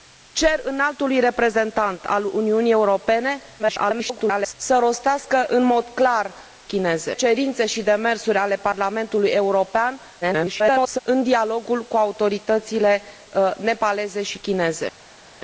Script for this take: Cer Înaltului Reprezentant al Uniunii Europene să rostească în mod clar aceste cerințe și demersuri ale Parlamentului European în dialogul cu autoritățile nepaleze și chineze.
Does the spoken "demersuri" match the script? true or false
true